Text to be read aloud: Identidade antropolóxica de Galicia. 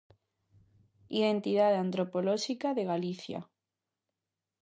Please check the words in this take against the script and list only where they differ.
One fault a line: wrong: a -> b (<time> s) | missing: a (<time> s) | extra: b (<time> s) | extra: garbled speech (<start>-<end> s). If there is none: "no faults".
no faults